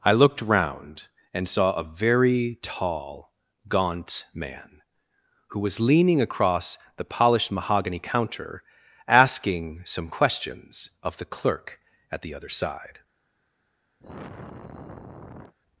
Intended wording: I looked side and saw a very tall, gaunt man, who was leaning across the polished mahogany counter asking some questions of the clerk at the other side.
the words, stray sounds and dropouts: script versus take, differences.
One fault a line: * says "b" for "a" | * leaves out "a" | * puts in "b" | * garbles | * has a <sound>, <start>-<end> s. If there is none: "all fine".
* says "round" for "side"
* has a sigh, 14.0-15.5 s